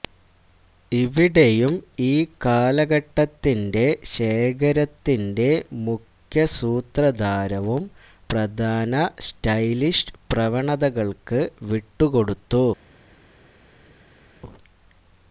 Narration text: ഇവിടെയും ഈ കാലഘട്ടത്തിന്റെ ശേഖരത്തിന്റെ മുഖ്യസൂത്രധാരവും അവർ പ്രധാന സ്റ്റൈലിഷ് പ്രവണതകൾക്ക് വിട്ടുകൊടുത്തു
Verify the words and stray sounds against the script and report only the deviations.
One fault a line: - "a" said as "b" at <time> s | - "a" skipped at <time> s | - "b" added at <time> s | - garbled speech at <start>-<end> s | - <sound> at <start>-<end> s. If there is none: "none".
- "അവർ" skipped at 7.8 s